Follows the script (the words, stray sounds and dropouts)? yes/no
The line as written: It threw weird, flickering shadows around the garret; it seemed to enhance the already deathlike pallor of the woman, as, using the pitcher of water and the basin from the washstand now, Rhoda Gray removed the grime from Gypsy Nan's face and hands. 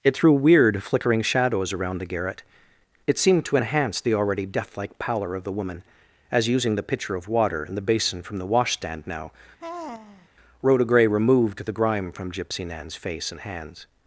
no